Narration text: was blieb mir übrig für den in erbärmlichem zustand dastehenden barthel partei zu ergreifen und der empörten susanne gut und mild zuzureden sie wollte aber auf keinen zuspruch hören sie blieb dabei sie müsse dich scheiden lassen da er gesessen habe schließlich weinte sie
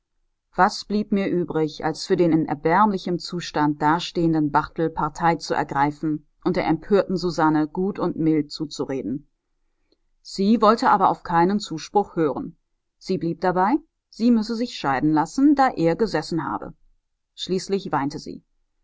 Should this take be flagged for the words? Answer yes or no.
yes